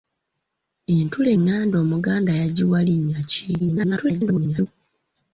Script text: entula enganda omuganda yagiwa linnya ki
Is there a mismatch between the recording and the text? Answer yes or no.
yes